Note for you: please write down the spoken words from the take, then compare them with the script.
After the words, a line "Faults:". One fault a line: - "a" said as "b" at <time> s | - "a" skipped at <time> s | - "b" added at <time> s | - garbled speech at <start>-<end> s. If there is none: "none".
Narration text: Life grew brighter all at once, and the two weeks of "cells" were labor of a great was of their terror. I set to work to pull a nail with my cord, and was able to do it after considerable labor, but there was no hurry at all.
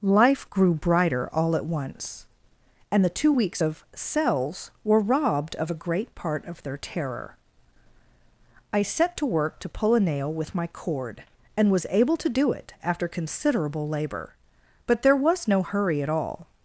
Life grew brighter all at once, and the two weeks of "cells" were robbed of a great part of their terror. I set to work to pull a nail with my cord, and was able to do it after considerable labor, but there was no hurry at all.
Faults:
- "labor" said as "robbed" at 5.0 s
- "was" said as "part" at 6.1 s